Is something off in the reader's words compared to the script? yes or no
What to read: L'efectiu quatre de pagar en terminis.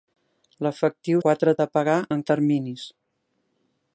no